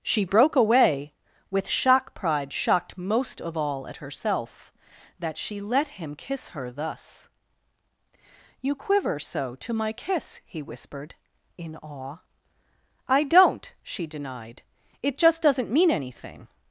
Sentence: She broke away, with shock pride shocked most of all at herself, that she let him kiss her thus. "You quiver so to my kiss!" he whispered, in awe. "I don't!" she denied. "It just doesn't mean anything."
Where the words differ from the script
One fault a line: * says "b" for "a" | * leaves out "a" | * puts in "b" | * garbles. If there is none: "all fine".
all fine